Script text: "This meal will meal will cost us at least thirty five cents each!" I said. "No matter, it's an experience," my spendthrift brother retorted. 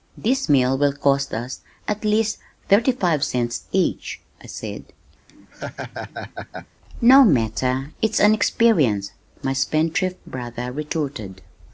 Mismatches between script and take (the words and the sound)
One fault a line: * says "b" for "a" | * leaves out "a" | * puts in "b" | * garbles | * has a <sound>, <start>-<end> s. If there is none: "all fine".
* leaves out "meal will"
* has a laugh, 5.3-6.7 s